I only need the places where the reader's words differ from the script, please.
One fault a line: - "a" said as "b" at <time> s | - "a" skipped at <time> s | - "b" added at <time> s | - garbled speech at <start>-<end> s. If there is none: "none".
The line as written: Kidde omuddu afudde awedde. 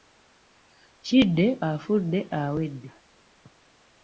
- "omuddu" skipped at 1.4 s